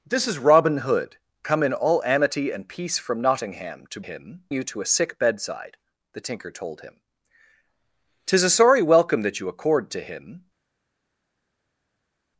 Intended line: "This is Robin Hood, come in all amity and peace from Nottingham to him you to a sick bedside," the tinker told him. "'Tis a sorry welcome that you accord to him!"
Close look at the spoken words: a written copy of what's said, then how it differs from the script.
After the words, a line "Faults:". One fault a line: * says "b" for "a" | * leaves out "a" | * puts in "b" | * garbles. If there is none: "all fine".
"This is Robin Hood, come in all amity and peace from Nottingham to him you to a sick bedside," the tinker told him. "'Tis a sorry welcome that you accord to him!"
Faults:
all fine